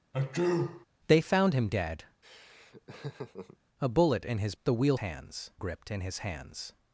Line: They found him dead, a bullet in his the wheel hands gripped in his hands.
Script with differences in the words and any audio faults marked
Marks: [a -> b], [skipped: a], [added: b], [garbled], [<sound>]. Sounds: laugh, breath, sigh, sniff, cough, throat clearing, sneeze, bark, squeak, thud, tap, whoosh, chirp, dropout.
[sneeze] They found him dead, [laugh] a bullet in his the wheel hands gripped in his hands.